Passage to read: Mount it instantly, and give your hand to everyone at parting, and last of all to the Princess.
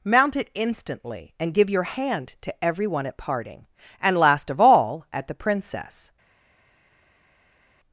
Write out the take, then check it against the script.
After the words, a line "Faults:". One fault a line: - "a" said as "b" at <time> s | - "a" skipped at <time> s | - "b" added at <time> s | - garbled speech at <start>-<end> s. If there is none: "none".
Mount it instantly, and give your hand to everyone at parting, and last of all at the Princess.
Faults:
- "to" said as "at" at 5.1 s